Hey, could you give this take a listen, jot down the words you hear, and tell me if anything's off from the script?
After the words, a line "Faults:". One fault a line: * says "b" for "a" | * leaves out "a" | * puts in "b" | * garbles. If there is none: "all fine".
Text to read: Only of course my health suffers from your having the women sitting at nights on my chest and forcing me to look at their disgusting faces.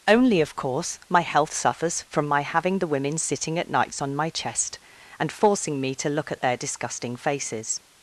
Only of course my health suffers from my having the women sitting at nights on my chest and forcing me to look at their disgusting faces.
Faults:
* says "my" for "your"